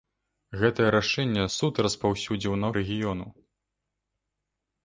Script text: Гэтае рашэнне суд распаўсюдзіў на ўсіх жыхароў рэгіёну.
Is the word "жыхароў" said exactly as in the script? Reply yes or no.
no